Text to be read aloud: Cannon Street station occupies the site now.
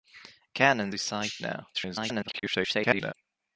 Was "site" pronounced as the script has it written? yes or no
yes